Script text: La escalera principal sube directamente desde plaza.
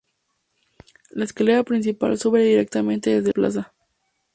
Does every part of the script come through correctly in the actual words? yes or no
yes